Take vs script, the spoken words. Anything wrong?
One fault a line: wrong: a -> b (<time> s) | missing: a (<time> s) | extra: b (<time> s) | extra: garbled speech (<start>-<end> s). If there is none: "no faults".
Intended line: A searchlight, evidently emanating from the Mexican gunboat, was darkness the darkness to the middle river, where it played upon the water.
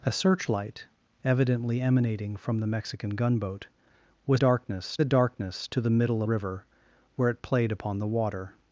no faults